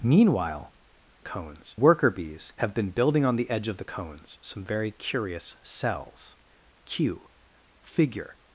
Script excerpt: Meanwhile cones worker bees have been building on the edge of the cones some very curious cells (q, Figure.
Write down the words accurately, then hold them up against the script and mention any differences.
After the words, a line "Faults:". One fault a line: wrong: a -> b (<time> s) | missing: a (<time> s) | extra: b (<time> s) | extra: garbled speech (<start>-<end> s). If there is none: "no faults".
Meanwhile cones worker bees have been building on the edge of the cones some very curious cells (q, Figure.
Faults:
no faults